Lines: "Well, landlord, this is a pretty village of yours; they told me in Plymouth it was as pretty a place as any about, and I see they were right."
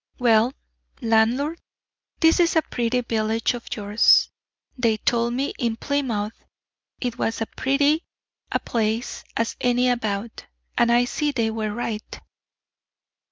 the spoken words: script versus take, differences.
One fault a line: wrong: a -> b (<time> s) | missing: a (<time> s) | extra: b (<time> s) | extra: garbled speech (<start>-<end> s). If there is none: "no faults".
no faults